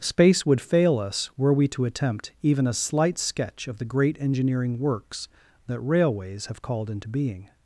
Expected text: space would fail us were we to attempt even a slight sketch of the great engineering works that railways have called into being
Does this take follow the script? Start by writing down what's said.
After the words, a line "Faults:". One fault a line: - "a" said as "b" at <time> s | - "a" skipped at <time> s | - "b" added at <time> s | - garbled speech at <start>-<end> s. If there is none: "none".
space would fail us were we to attempt even a slight sketch of the great engineering works that railways have called into being
Faults:
none